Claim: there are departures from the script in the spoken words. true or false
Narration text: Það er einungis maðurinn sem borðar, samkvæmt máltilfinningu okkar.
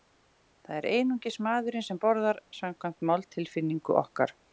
false